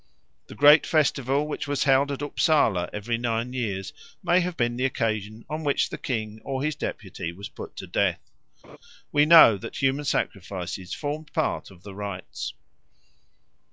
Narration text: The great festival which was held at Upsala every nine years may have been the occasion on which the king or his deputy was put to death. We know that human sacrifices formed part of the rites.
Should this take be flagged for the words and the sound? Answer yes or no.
yes